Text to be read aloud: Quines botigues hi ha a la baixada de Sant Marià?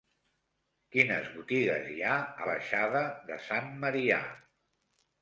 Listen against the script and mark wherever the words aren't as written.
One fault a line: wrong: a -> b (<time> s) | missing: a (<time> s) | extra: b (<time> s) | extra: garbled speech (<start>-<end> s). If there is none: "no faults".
missing: la (2.5 s)